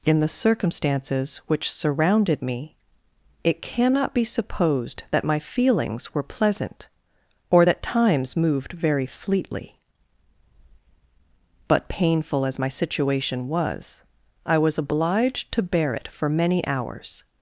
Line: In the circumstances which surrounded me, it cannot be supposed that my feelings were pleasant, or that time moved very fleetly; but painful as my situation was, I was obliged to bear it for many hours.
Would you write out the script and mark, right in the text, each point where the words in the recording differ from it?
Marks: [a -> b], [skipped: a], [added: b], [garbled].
In the circumstances which surrounded me, it cannot be supposed that my feelings were pleasant, or that [time -> times] moved very fleetly; but painful as my situation was, I was obliged to bear it for many hours.